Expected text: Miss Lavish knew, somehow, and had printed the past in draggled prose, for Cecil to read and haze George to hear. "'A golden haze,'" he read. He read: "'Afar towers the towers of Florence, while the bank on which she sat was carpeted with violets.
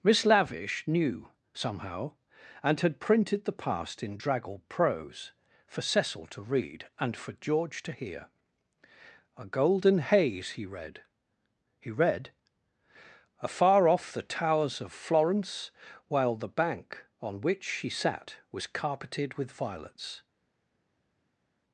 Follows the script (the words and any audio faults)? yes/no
no